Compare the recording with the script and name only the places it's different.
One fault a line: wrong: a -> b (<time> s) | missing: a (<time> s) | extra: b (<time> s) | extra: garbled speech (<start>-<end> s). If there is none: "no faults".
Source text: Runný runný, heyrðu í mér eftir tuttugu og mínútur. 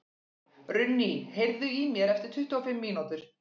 missing: runný (1.1 s)
extra: fimm (2.7 s)